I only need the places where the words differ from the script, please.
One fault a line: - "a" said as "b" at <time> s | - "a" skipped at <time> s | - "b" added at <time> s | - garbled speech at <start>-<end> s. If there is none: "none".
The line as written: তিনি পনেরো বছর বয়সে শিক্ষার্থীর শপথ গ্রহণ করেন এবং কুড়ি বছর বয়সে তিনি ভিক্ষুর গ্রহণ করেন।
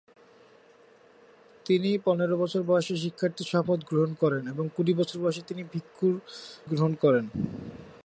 none